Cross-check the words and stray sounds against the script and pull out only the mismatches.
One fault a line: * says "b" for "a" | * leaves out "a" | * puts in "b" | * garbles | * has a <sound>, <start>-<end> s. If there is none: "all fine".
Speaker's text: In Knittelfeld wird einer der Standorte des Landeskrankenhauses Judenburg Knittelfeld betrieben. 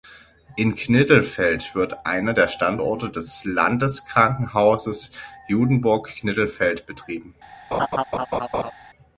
* has a laugh, 7.7-8.7 s